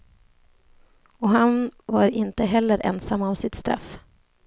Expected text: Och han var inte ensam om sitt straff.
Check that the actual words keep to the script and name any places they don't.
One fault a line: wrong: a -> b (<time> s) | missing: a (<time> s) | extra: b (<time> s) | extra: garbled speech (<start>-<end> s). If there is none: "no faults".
extra: heller (2.4 s)